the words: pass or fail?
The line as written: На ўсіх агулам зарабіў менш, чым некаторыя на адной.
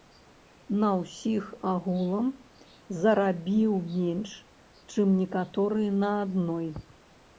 pass